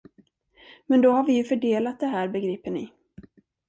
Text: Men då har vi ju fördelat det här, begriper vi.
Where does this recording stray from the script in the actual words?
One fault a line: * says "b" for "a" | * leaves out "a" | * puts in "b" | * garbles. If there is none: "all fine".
* says "ni" for "vi"